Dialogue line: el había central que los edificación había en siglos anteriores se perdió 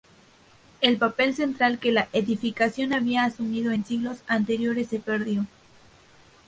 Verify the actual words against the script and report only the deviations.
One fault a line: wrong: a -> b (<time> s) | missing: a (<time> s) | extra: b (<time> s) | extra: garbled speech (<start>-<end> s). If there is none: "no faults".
wrong: había -> papel (1.0 s)
wrong: los -> la (1.9 s)
extra: asumido (3.2 s)